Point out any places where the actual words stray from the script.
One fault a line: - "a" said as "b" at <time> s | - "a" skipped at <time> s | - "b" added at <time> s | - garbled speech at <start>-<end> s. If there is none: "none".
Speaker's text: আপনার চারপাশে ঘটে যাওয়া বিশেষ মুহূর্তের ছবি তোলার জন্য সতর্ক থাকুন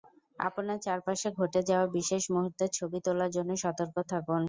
none